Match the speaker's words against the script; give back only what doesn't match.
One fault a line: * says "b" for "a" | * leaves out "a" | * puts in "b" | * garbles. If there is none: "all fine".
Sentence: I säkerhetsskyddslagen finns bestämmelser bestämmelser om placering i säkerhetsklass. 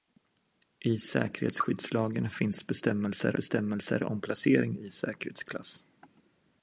all fine